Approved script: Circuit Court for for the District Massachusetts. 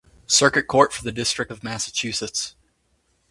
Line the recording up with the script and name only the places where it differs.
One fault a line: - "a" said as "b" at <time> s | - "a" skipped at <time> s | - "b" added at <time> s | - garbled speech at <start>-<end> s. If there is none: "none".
- "for" skipped at 1.0 s
- "of" added at 1.5 s